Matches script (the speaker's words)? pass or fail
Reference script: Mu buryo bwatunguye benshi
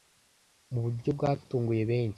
pass